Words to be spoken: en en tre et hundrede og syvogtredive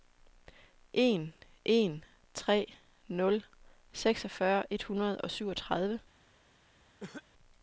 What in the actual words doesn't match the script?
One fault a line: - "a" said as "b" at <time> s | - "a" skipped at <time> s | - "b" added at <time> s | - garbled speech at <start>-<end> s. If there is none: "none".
- "nul seksogfyrre" added at 3.1 s